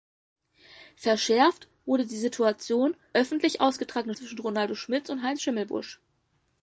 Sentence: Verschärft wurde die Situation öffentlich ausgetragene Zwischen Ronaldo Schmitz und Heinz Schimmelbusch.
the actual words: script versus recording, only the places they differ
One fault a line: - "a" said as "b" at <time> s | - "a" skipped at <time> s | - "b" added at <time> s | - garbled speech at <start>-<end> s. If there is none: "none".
none